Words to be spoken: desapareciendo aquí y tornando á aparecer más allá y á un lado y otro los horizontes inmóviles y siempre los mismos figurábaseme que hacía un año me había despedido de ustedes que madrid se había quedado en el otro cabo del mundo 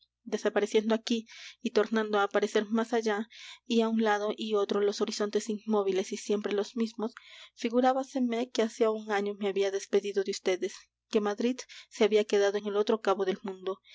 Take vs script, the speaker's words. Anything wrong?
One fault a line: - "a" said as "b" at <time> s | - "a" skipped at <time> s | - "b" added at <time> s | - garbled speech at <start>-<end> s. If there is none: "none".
none